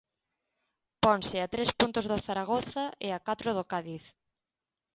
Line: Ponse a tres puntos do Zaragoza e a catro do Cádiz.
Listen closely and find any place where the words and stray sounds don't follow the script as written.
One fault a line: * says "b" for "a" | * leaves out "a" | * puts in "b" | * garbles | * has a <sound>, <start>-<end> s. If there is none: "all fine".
all fine